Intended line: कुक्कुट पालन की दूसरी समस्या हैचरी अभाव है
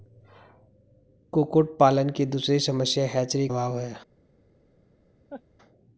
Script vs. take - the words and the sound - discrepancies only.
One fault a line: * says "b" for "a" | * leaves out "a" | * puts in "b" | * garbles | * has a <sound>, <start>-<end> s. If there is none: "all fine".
* has a laugh, 5.3-5.4 s